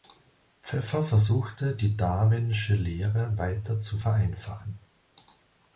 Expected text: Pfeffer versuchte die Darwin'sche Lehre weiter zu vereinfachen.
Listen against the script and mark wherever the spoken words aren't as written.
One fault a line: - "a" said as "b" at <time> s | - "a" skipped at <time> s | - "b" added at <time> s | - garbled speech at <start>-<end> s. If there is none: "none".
none